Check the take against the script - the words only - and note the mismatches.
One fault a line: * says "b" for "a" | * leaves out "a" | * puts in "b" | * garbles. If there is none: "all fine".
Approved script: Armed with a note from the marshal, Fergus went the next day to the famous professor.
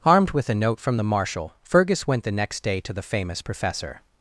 all fine